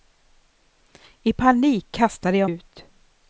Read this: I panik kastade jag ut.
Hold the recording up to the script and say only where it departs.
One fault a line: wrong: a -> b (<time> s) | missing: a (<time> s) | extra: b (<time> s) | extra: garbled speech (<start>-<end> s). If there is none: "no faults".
no faults